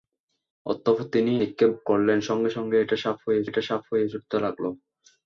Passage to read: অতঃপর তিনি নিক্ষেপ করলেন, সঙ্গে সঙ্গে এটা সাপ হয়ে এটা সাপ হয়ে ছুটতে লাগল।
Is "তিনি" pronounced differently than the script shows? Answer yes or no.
no